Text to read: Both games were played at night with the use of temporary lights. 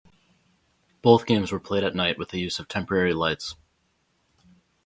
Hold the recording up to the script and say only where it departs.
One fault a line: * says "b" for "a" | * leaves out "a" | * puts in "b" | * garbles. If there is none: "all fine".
all fine